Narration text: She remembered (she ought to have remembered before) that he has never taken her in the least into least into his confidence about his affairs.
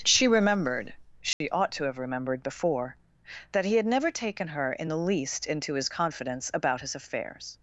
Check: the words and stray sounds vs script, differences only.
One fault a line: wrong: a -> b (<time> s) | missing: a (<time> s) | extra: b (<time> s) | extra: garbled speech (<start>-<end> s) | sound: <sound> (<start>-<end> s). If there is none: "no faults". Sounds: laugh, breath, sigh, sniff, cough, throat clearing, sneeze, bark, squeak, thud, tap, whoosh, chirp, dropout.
sound: dropout (1.3-1.4 s)
wrong: has -> had (3.8 s)
missing: least into (5.7 s)